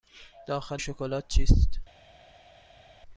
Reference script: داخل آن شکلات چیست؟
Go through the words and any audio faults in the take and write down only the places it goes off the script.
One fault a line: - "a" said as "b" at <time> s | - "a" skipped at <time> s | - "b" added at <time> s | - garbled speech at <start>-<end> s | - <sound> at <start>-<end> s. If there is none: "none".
- "آن" skipped at 0.8 s